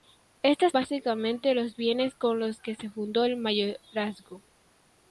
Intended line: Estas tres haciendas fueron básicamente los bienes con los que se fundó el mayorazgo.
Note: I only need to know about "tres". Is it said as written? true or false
false